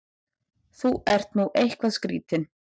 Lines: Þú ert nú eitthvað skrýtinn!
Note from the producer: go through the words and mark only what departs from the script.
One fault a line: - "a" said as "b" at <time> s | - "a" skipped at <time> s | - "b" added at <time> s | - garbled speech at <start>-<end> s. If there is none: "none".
none